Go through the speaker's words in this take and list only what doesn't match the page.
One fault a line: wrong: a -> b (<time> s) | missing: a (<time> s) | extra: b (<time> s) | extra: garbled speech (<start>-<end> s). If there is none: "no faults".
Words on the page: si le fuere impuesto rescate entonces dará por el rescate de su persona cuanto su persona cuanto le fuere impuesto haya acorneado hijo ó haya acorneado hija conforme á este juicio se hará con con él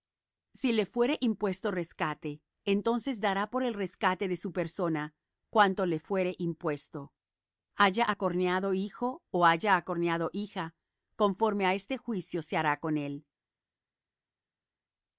missing: su persona cuanto (5.8 s)
missing: con (13.0 s)